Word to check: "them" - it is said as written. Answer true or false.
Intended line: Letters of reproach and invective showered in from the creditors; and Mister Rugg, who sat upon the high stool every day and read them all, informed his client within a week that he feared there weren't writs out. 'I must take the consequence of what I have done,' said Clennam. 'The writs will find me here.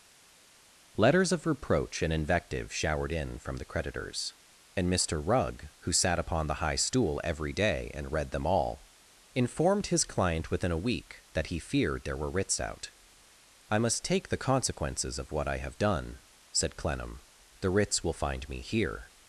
true